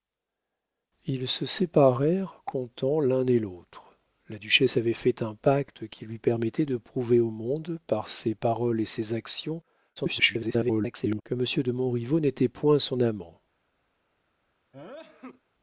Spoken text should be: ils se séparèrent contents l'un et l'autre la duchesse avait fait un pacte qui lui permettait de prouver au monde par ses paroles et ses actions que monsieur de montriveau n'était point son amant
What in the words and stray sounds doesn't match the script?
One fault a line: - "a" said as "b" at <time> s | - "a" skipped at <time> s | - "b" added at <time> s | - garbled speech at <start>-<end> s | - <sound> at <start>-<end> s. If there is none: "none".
- garbled speech at 10.0-11.2 s
- sneeze at 14.7-15.4 s